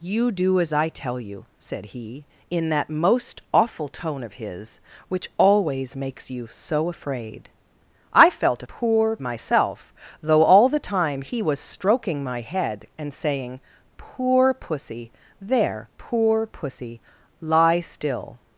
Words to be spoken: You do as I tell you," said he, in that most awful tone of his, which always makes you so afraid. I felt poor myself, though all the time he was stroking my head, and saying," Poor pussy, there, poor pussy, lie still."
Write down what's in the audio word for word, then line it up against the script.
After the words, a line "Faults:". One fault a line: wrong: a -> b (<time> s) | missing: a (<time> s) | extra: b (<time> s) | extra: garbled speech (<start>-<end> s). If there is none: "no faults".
You do as I tell you," said he, in that most awful tone of his, which always makes you so afraid. I felt poor myself, though all the time he was stroking my head, and saying," Poor pussy, there, poor pussy, lie still."
Faults:
no faults